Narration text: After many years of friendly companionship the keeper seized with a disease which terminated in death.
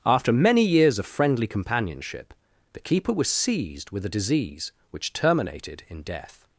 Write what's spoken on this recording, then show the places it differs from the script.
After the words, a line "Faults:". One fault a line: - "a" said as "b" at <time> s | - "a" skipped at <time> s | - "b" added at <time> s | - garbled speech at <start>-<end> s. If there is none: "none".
After many years of friendly companionship the keeper was seized with a disease which terminated in death.
Faults:
- "was" added at 3.1 s